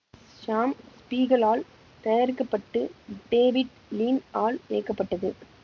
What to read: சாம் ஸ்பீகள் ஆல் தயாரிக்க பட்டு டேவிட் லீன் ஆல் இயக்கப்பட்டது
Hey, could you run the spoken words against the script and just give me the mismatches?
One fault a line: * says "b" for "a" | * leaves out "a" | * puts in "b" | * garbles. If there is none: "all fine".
all fine